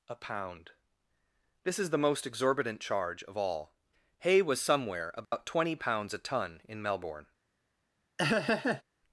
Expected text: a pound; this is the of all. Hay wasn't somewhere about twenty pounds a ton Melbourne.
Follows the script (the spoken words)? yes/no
no